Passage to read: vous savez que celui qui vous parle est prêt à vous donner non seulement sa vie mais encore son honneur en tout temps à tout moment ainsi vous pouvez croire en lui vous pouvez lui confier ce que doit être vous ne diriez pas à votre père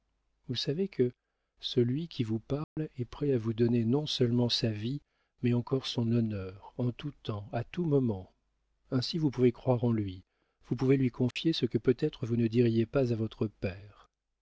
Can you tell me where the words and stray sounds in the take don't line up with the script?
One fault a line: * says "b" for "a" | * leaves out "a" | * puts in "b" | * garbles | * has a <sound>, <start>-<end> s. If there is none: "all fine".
* has a dropout, 2.6-2.8 s
* has a dropout, 11.3-11.4 s
* says "peut" for "doit"